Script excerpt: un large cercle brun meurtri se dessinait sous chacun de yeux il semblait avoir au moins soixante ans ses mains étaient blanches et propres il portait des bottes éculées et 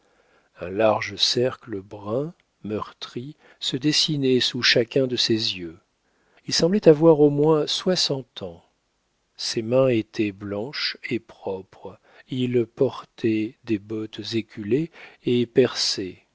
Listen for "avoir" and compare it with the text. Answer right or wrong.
right